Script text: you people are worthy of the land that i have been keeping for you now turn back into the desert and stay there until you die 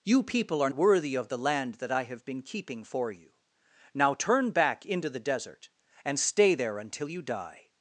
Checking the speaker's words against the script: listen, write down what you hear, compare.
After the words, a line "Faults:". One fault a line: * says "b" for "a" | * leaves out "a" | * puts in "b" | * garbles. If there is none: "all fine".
you people are worthy of the land that i have been keeping for you now turn back into the desert and stay there until you die
Faults:
all fine